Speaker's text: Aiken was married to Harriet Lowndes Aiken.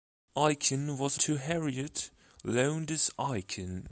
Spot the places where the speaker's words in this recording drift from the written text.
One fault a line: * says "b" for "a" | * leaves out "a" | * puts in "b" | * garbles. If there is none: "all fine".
* leaves out "married"